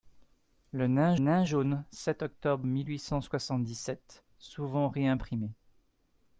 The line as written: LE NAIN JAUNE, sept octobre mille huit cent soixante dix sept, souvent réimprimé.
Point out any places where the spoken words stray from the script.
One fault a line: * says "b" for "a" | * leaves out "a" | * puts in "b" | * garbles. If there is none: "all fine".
* puts in "NAIN"